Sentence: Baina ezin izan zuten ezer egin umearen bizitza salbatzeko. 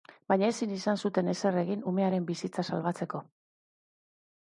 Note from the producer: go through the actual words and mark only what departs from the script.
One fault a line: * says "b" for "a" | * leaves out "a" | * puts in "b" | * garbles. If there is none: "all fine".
all fine